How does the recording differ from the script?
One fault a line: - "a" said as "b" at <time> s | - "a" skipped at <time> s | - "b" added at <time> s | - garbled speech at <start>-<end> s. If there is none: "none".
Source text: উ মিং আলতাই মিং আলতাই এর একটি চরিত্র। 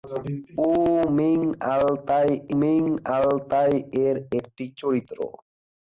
none